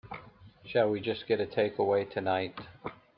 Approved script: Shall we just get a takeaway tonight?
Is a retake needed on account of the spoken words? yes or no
no